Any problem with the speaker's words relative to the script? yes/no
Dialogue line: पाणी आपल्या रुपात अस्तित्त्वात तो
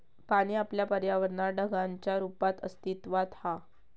yes